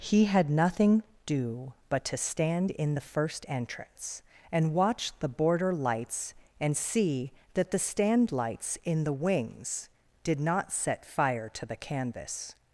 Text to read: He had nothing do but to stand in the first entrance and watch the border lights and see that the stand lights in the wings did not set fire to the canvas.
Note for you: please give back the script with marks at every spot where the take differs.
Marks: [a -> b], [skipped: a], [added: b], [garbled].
He had nothing do but to stand in the first entrance and watch the border lights and see that the stand lights in the wings did not set fire to the canvas.